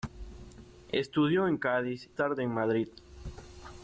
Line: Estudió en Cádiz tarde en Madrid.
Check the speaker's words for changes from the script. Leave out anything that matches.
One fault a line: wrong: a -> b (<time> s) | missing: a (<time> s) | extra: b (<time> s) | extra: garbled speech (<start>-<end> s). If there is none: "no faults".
no faults